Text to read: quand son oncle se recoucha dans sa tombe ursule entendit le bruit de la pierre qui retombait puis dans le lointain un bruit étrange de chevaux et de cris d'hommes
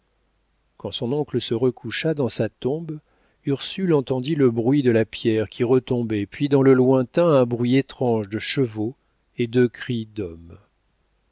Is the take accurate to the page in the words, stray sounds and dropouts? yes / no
yes